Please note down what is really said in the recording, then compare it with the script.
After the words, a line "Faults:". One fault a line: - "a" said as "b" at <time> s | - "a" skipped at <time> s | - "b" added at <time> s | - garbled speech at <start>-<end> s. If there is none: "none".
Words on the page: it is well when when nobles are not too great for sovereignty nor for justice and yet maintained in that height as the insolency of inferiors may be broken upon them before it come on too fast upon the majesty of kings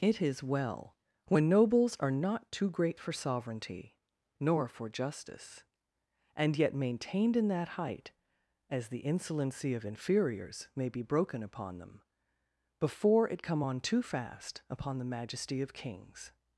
it is well when nobles are not too great for sovereignty nor for justice and yet maintained in that height as the insolency of inferiors may be broken upon them before it come on too fast upon the majesty of kings
Faults:
- "when" skipped at 1.5 s